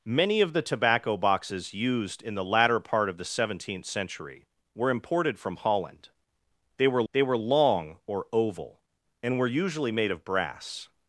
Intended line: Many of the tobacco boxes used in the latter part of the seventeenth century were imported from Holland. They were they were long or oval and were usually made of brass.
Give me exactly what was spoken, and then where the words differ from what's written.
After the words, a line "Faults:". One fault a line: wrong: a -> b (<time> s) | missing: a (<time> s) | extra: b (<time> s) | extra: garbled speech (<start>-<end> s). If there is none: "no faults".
Many of the tobacco boxes used in the latter part of the seventeenth century were imported from Holland. They were they were long or oval and were usually made of brass.
Faults:
no faults